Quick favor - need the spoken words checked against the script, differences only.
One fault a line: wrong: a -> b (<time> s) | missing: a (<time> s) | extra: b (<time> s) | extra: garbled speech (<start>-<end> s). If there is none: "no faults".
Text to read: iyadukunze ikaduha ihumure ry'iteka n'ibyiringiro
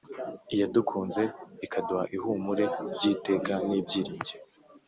no faults